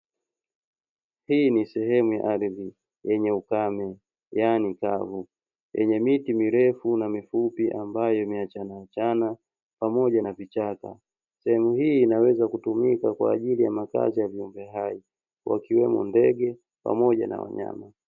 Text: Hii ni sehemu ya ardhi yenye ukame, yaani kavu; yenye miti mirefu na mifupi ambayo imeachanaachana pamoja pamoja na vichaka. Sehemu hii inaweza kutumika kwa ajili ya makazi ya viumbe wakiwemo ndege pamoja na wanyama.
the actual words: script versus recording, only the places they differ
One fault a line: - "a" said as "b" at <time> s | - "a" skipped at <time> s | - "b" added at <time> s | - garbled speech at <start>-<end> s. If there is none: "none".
- "pamoja" skipped at 10.2 s
- "hai" added at 14.7 s